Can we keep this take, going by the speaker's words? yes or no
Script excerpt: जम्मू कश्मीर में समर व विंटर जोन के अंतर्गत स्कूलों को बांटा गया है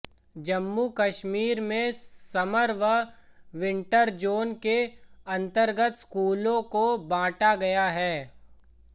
yes